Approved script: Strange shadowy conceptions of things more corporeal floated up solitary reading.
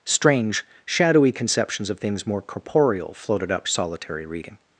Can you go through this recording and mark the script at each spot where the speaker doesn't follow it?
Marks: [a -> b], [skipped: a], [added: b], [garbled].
Strange shadowy conceptions of things more corporeal floated up solitary reading.